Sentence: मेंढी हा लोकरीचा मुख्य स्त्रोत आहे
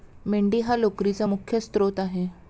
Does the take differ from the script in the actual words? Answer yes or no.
no